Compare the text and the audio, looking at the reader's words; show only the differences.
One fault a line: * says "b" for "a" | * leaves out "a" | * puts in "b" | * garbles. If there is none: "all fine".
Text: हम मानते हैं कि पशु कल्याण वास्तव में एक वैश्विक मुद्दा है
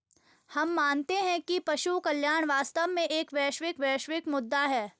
* puts in "वैश्विक"